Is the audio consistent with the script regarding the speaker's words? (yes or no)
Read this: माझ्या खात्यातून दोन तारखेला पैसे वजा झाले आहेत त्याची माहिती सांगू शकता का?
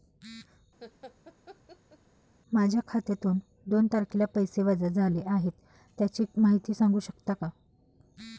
yes